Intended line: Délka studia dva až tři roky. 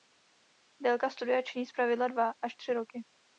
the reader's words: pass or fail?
fail